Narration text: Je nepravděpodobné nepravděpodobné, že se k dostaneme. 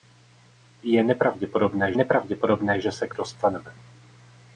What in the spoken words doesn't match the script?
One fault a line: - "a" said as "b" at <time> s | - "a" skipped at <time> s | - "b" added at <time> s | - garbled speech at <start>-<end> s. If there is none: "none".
none